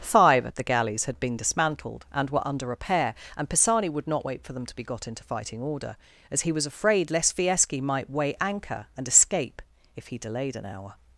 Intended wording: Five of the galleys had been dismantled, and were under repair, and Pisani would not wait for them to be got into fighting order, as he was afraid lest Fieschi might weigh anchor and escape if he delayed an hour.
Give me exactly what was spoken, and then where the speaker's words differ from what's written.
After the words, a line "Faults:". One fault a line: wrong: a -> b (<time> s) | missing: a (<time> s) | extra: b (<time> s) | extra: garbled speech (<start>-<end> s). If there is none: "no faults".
Five of the galleys had been dismantled, and were under repair, and Pisani would not wait for them to be got into fighting order, as he was afraid lest Fieschi might weigh anchor and escape if he delayed an hour.
Faults:
no faults